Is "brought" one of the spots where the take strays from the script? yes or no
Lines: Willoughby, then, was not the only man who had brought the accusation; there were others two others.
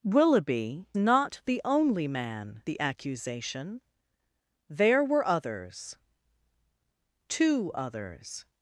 yes